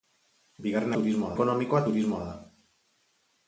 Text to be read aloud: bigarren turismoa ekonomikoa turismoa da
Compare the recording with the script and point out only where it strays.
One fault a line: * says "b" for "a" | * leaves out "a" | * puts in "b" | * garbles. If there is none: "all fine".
all fine